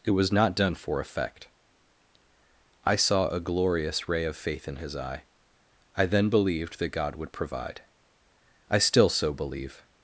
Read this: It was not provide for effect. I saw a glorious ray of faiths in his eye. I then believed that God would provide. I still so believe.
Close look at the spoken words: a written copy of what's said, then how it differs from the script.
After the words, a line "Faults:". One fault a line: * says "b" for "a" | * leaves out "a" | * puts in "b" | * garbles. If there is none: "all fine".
It was not done for effect. I saw a glorious ray of faith in his eye. I then believed that God would provide. I still so believe.
Faults:
* says "done" for "provide"
* says "faith" for "faiths"